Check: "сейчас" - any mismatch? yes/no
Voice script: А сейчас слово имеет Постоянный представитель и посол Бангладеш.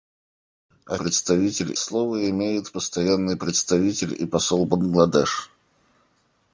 yes